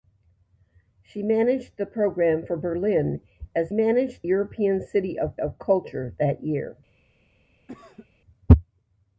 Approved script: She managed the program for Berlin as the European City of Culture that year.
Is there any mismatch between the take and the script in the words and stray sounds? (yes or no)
yes